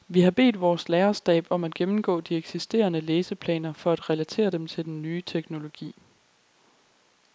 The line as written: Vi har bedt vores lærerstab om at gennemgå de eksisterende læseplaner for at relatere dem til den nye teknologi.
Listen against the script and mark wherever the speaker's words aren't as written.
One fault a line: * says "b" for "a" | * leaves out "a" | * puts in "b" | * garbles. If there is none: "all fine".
all fine